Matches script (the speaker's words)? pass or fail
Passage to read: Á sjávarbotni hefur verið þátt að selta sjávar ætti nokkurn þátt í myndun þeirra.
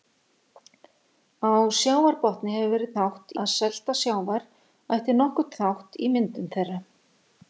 pass